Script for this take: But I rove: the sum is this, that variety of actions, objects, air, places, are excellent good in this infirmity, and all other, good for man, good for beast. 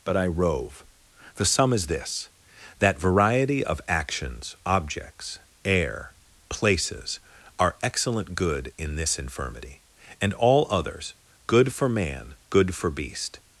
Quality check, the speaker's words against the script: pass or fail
fail